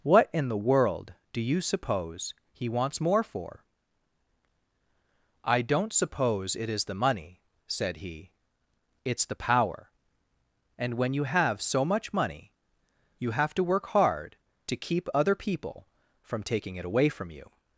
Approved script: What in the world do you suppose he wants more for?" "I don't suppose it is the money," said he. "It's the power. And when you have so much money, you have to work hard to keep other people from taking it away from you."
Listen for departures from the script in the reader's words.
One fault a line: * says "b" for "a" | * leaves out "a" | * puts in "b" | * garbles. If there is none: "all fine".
all fine